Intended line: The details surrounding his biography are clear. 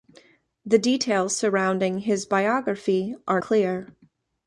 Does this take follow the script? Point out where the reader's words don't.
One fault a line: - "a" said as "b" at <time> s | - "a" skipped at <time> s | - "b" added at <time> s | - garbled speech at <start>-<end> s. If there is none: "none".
none